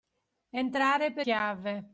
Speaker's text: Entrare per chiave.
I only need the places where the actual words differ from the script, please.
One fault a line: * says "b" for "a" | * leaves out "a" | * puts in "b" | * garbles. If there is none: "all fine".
all fine